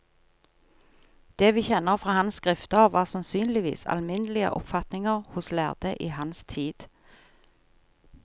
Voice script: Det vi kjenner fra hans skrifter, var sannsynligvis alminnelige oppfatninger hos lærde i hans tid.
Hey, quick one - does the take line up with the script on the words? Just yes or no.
yes